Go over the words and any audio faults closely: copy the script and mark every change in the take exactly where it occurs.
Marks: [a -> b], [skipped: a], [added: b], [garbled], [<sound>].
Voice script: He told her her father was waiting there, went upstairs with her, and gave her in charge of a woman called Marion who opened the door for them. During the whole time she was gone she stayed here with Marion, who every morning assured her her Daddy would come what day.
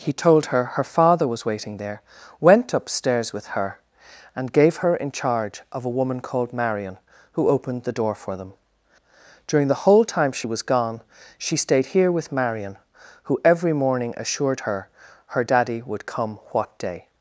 He told her her father was waiting there, went upstairs with her, and gave her in charge of a woman called Marion who opened the door for them. During the whole time she was gone she stayed here with Marion, who every morning assured her her Daddy would come what day.